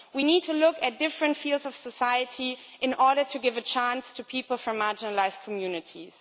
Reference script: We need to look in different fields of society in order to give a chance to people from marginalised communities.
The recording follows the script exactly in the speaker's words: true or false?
false